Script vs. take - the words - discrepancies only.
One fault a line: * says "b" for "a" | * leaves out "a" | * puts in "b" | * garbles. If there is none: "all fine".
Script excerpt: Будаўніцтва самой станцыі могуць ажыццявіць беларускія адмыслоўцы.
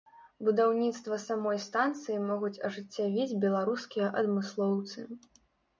all fine